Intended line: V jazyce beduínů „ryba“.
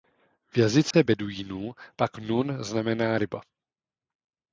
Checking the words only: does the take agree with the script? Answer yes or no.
no